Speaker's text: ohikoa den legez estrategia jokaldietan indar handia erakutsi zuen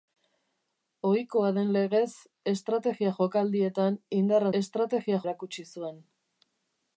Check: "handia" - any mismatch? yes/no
yes